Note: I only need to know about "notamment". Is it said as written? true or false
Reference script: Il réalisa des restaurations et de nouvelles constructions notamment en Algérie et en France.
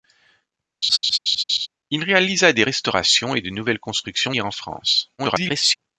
false